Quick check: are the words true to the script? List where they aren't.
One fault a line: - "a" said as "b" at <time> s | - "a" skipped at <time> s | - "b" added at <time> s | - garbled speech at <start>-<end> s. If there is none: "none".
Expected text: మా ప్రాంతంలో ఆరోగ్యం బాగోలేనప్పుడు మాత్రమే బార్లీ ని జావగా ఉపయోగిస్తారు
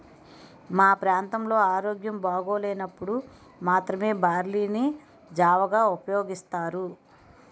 none